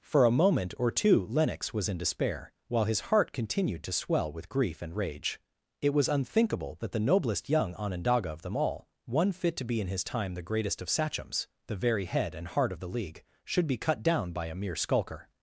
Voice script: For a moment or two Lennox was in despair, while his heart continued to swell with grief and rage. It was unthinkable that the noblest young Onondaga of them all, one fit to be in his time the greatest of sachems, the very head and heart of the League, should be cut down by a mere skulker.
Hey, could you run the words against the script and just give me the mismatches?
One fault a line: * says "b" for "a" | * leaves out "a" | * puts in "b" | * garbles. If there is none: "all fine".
all fine